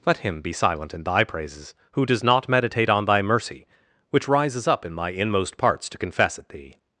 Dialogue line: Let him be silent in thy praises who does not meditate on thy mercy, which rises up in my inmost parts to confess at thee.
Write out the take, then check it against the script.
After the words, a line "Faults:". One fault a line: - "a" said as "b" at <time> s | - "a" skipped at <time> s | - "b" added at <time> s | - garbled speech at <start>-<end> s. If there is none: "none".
Let him be silent in thy praises who does not meditate on thy mercy, which rises up in my inmost parts to confess at thee.
Faults:
none